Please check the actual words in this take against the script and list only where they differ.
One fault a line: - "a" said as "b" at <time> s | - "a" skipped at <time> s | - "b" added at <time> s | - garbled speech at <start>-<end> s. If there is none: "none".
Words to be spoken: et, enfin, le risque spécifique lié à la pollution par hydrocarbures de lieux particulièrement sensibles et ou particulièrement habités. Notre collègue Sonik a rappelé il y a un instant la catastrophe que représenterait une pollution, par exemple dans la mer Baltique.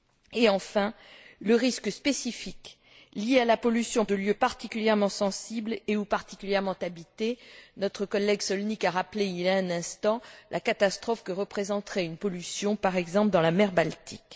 - "par hydrocarbures" skipped at 4.0 s